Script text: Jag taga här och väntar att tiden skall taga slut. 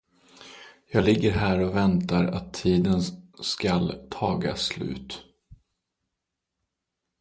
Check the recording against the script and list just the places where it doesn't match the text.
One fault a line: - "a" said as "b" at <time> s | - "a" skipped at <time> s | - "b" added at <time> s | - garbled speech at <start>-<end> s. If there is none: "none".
- "taga" said as "ligger" at 1.0 s